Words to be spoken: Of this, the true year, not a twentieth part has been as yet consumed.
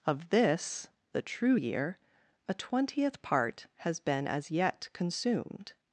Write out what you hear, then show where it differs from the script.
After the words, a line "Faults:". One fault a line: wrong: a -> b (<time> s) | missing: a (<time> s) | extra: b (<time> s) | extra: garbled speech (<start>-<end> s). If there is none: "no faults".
Of this, the true year, a twentieth part has been as yet consumed.
Faults:
missing: not (2.0 s)